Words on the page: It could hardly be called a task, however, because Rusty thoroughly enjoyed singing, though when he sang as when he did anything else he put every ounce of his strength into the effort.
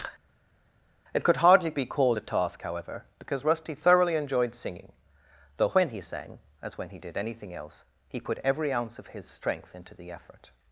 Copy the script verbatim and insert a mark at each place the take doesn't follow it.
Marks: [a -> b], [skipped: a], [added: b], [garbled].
It could hardly be called a task, however, because Rusty thoroughly enjoyed singing, though when he sang as when he did anything else he put every ounce of his strength into the effort.